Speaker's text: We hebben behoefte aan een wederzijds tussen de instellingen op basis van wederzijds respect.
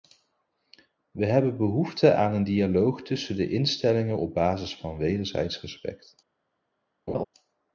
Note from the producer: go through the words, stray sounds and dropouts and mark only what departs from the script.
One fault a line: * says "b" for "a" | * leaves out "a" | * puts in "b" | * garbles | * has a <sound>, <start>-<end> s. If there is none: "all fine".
* says "dialoog" for "wederzijds"
* has a laugh, 7.1-7.2 s